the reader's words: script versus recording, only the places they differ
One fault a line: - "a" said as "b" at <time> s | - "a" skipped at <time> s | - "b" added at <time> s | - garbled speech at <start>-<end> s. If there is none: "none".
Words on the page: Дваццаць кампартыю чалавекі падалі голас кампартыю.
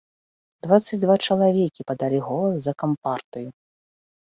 - "кампартыю" said as "два" at 1.0 s
- "за" added at 2.7 s